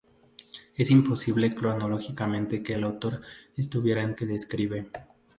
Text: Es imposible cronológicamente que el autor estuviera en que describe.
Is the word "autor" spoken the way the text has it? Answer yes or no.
yes